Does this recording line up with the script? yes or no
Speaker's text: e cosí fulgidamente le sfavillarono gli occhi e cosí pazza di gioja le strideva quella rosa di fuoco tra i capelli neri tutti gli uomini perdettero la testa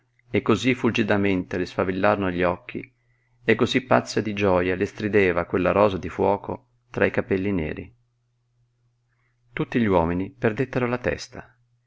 yes